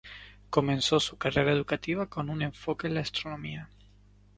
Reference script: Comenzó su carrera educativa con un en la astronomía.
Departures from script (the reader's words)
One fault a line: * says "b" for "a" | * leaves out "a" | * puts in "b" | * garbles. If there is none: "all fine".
* puts in "enfoque"